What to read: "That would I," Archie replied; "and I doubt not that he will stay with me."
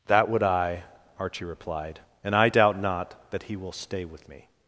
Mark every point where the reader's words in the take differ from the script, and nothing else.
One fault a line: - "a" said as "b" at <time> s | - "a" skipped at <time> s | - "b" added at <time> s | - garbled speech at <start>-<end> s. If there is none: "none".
none